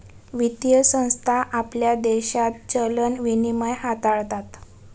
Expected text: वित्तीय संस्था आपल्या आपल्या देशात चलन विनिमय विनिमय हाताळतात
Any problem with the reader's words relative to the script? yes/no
yes